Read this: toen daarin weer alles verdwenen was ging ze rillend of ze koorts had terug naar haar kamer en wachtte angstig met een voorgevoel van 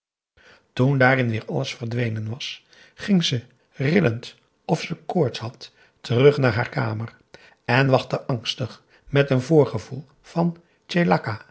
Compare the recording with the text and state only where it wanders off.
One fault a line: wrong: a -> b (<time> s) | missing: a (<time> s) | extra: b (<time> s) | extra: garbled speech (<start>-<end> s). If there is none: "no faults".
no faults